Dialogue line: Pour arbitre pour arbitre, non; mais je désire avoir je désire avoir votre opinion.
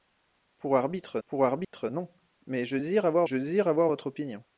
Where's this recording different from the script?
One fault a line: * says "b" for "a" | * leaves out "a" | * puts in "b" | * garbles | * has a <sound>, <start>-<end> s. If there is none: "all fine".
* has a dropout, 1.6-1.7 s